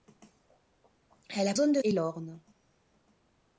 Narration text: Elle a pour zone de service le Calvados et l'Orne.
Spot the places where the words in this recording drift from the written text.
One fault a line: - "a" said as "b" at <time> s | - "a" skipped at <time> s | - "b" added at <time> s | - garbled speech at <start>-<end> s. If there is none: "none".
- "pour" skipped at 1.5 s
- "service le Calvados" skipped at 1.8 s